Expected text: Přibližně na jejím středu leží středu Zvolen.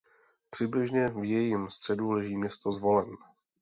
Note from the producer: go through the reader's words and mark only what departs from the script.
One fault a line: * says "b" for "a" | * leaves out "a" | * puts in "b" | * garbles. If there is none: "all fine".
* says "v" for "na"
* says "město" for "středu"